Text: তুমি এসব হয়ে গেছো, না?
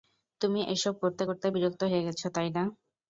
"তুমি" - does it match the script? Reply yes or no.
yes